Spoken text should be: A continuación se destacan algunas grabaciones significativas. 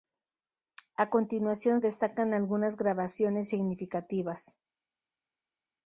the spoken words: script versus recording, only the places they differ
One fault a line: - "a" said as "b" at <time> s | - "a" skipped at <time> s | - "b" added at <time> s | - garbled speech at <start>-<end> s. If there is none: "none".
- "se" skipped at 1.8 s